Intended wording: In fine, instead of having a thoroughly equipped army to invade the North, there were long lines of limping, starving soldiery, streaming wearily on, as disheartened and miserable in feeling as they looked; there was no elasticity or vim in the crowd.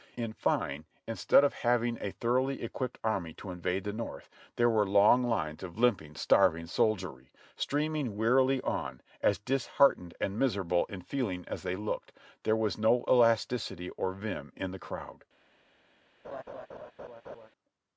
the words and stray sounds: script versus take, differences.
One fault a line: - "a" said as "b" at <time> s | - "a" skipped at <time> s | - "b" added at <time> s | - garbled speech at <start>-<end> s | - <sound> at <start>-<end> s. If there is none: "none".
- laugh at 16.2-17.5 s